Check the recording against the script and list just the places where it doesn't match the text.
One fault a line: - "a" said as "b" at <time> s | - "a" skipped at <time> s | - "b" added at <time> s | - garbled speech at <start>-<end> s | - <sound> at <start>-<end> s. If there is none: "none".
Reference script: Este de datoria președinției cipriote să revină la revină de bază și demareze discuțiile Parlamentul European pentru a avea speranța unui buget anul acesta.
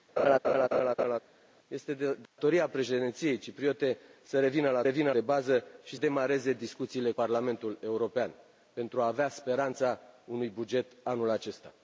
- laugh at 0.2-1.2 s
- dropout at 2.3-2.4 s